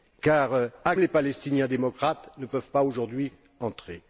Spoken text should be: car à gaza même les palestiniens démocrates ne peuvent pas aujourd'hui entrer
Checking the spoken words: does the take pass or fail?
fail